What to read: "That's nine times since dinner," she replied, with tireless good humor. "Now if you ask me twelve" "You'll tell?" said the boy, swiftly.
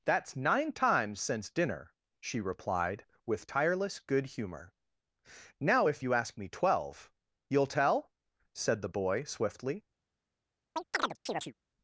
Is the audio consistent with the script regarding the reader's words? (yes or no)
yes